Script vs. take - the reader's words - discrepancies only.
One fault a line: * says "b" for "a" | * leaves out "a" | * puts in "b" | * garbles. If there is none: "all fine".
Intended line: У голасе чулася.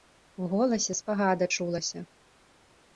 * puts in "спагада"